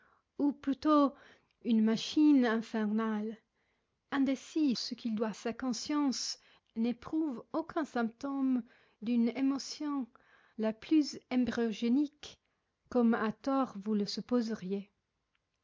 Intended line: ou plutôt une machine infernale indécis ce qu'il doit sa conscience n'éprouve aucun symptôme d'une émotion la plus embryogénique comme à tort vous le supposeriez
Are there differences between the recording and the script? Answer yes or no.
no